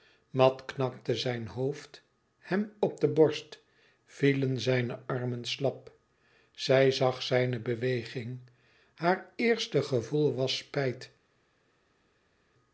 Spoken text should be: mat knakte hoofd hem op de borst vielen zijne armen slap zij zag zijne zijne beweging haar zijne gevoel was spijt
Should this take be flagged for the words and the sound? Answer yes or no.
yes